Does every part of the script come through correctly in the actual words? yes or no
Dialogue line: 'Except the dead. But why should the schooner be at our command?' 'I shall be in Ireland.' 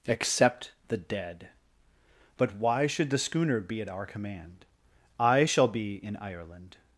yes